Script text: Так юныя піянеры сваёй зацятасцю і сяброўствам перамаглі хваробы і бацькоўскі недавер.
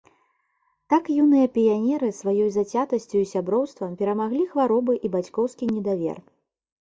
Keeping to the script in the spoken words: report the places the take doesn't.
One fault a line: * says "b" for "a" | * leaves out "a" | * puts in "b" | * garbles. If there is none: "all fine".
all fine